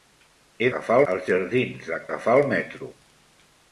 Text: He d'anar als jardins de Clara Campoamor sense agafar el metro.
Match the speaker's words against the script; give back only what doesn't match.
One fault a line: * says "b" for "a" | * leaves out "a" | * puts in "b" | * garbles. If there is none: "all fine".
* says "agafar" for "d'anar"
* leaves out "Clara Campoamor sense"